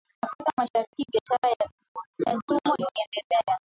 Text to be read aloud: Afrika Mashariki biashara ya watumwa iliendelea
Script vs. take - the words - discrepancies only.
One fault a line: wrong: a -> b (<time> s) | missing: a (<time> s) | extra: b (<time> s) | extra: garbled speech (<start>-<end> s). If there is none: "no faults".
no faults